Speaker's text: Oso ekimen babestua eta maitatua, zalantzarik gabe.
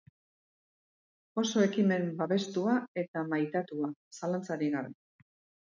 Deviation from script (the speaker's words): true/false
false